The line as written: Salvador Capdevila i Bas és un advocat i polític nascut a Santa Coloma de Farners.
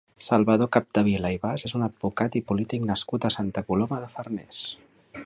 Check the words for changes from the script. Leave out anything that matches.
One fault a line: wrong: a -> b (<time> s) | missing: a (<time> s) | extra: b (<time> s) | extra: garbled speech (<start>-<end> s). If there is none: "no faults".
no faults